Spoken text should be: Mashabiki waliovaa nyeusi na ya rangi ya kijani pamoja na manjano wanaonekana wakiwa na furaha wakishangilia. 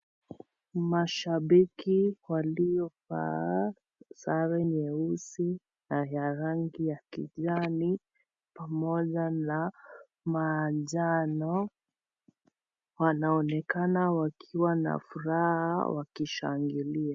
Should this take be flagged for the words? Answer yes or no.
yes